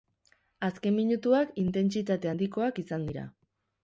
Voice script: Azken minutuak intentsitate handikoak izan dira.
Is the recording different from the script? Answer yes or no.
no